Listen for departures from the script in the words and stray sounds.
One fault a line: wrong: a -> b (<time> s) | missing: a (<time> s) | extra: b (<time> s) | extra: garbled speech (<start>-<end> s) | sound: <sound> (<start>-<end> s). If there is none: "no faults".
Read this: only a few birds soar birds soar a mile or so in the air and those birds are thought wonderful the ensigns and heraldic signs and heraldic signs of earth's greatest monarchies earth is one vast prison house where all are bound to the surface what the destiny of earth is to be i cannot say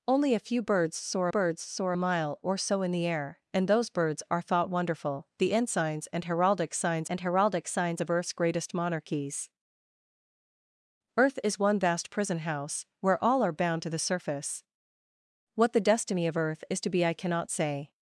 no faults